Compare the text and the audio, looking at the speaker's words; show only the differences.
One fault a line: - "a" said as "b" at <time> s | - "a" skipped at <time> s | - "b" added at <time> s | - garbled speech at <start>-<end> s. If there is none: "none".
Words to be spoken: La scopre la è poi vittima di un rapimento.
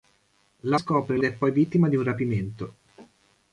none